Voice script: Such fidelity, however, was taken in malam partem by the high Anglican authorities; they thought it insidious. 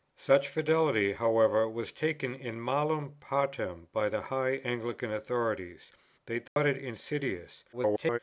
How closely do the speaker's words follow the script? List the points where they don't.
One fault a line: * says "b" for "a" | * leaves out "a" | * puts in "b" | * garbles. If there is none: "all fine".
* garbles